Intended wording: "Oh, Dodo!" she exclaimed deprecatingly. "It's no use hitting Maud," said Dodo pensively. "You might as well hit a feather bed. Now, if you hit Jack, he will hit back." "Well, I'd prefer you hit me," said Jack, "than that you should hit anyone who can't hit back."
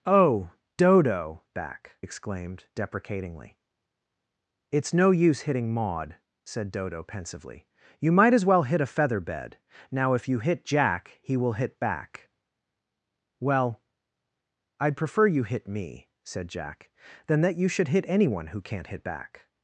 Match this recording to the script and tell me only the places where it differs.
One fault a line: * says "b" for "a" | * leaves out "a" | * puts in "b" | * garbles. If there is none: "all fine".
* says "back" for "she"